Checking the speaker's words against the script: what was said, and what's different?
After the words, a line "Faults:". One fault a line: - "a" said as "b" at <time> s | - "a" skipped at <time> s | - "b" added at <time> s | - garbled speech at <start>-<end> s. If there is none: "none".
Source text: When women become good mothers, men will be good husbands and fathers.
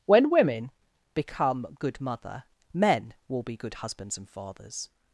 When women become good mother, men will be good husbands and fathers.
Faults:
- "mothers" said as "mother" at 2.0 s